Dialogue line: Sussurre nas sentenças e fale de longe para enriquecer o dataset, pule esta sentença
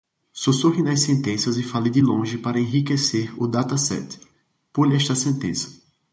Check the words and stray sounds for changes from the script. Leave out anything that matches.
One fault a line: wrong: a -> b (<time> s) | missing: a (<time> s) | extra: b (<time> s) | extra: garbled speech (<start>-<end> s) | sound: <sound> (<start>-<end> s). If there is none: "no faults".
no faults